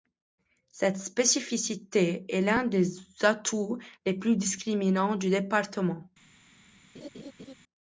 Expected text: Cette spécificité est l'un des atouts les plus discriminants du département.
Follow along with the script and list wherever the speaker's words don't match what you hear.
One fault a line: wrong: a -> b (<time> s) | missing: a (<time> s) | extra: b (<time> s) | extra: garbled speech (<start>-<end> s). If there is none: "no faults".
no faults